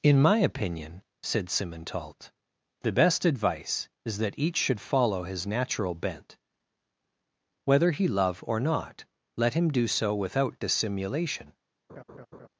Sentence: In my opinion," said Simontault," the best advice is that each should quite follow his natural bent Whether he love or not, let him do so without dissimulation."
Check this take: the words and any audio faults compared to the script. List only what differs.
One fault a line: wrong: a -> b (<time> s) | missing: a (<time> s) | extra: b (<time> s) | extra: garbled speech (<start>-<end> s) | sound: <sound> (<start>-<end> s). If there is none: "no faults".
missing: quite (4.8 s)
sound: laugh (11.9-12.5 s)